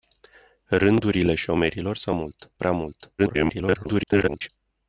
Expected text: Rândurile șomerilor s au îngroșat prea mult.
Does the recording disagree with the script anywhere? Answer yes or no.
yes